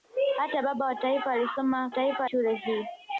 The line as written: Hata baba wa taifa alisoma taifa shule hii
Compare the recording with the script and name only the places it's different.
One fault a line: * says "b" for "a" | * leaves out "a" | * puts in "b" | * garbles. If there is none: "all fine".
all fine